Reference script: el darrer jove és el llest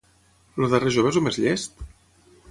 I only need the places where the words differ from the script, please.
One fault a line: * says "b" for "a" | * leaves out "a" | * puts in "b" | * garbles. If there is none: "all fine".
* puts in "més"